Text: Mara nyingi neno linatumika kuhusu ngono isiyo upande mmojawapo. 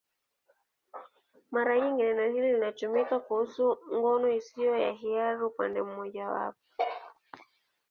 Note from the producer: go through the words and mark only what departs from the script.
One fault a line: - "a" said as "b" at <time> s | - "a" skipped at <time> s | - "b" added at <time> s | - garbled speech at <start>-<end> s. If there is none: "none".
- "hili" added at 2.3 s
- "ya hiari" added at 4.8 s